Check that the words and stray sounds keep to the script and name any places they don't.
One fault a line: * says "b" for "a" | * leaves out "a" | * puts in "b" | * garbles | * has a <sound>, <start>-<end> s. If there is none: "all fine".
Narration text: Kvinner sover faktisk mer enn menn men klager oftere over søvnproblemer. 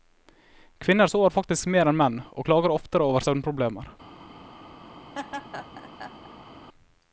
* says "og" for "men"
* has a laugh, 5.1-6.5 s